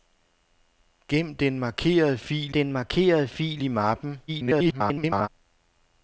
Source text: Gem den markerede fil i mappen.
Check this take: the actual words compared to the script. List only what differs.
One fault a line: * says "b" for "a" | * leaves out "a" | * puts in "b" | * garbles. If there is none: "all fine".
* puts in "den markerede fil"
* garbles